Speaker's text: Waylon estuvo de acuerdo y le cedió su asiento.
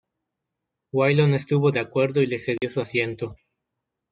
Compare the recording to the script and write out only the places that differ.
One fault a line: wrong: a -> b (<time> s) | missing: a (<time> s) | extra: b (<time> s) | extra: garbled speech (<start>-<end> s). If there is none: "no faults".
no faults